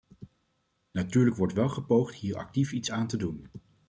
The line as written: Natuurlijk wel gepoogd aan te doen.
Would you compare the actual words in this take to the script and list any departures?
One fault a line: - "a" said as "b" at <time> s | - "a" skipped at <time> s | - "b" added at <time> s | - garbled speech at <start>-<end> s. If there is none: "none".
- "wordt" added at 1.4 s
- "hier actief iets" added at 2.1 s